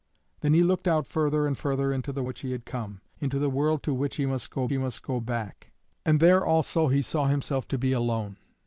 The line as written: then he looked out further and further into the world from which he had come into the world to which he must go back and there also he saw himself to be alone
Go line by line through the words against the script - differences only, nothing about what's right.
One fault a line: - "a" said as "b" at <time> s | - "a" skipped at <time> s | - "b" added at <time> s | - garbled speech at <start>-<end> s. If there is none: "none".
- "world from" skipped at 2.2 s
- "he must go" added at 4.7 s